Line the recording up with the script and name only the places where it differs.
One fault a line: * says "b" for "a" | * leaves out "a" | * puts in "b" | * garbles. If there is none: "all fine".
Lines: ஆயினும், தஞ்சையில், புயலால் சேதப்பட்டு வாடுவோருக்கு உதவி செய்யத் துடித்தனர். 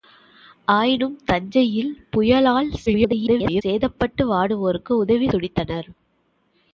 * garbles
* leaves out "செய்யத்"